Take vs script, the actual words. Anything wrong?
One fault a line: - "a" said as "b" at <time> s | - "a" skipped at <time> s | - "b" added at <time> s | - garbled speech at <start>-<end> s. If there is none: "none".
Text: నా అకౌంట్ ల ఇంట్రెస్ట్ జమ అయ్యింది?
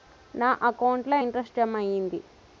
none